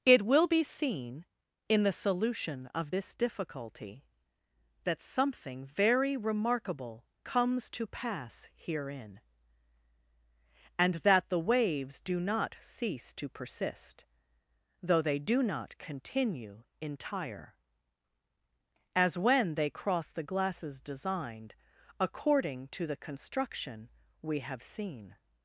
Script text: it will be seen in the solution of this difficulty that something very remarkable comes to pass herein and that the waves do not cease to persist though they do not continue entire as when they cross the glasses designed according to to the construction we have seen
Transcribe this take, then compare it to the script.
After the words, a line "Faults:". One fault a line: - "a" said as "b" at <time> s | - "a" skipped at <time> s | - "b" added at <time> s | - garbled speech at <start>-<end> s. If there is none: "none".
it will be seen in the solution of this difficulty that something very remarkable comes to pass herein and that the waves do not cease to persist though they do not continue entire as when they cross the glasses designed according to the construction we have seen
Faults:
- "to" skipped at 22.9 s